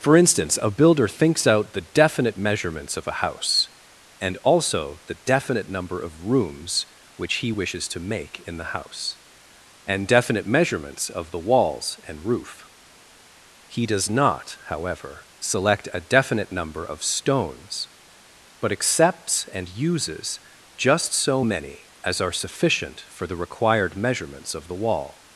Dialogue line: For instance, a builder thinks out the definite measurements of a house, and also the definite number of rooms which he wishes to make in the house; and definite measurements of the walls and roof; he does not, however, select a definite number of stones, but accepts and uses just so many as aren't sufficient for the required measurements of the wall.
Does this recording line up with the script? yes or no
no